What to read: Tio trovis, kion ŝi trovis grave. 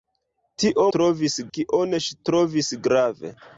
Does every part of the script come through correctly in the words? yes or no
yes